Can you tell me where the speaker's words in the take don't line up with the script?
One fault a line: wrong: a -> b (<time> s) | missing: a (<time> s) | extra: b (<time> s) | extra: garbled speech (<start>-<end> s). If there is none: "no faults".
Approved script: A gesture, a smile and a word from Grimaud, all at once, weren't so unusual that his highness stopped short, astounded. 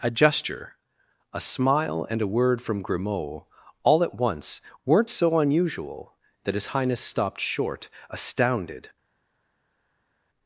no faults